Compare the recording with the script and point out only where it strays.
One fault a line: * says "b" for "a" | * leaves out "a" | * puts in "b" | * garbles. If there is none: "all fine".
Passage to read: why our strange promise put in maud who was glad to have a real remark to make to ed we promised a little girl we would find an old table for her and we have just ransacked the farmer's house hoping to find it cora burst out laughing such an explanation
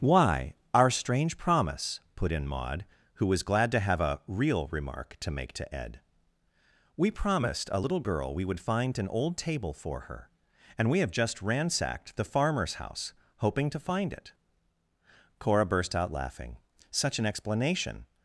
all fine